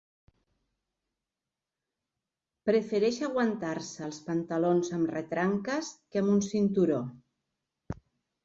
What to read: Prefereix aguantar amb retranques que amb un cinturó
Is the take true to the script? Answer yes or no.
no